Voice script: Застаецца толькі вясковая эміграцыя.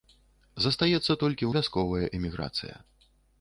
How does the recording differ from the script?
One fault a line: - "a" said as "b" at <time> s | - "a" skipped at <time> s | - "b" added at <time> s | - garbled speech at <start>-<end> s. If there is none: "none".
none